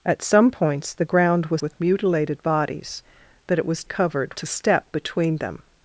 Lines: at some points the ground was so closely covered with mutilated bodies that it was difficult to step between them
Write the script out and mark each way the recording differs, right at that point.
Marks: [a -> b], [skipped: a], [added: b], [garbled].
at some points the ground was [skipped: so closely covered] with mutilated bodies that it was [difficult -> covered] to step between them